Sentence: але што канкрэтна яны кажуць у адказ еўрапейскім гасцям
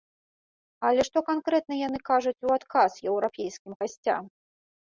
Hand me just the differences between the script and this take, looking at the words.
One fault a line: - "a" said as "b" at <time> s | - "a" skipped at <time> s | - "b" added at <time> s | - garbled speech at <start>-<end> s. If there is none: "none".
none